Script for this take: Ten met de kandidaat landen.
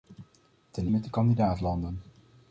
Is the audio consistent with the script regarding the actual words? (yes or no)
yes